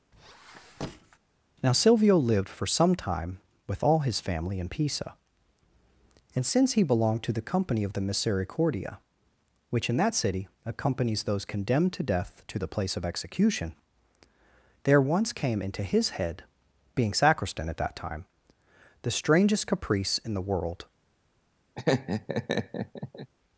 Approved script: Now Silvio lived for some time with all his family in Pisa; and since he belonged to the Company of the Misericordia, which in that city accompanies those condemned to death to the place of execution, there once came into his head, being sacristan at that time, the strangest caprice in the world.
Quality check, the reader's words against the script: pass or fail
pass